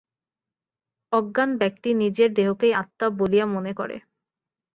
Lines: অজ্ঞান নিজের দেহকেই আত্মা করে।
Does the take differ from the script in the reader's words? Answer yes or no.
yes